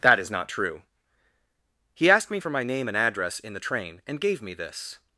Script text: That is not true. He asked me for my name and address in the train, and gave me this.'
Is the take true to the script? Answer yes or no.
yes